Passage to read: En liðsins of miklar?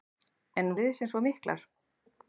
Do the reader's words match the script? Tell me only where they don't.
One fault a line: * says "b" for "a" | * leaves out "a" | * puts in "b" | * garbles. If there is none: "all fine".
all fine